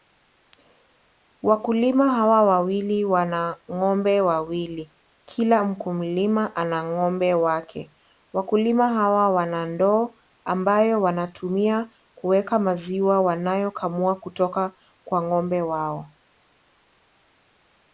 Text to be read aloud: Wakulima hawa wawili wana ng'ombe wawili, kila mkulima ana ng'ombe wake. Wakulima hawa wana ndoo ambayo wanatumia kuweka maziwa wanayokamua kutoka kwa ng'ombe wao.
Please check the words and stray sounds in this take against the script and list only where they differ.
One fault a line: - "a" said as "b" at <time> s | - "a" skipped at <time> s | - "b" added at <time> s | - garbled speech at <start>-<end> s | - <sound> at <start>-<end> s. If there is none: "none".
none